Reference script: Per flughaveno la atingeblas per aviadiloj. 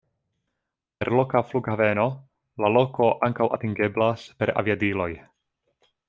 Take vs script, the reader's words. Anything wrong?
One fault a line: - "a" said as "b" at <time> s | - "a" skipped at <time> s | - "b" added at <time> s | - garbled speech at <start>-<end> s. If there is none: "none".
- "loka" added at 1.2 s
- "loko ankaŭ" added at 2.8 s